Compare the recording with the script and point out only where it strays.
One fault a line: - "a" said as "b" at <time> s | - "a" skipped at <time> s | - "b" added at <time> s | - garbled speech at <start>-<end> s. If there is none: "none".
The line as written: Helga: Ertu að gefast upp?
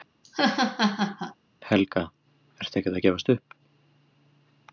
- "ekkert" added at 2.8 s